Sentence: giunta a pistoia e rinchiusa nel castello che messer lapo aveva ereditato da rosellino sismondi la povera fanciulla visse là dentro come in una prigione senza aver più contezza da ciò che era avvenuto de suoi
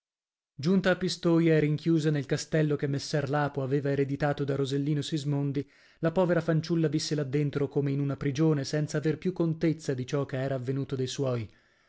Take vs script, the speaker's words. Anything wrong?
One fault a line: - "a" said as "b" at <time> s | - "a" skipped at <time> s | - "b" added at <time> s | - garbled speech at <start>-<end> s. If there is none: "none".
- "da" said as "di" at 9.9 s